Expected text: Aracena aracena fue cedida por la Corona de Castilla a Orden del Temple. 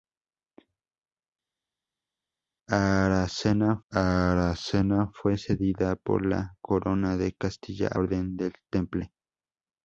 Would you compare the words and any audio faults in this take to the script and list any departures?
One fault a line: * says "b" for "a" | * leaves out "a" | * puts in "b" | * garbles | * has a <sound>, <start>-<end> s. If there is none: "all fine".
all fine